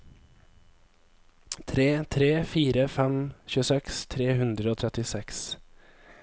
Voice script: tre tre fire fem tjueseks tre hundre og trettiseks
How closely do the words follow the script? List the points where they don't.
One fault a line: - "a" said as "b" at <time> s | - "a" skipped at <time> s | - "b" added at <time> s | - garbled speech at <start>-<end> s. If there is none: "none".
none